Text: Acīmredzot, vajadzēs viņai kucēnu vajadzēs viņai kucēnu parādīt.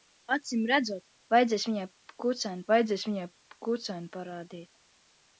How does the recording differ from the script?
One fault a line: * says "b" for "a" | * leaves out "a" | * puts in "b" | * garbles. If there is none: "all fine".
all fine